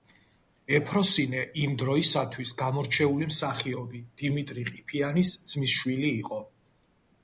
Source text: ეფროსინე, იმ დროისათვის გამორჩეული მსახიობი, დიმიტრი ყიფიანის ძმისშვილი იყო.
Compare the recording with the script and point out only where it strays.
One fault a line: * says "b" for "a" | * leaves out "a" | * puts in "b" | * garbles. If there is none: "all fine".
all fine